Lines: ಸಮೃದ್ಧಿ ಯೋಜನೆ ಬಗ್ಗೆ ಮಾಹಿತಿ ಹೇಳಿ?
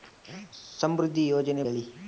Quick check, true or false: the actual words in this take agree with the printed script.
false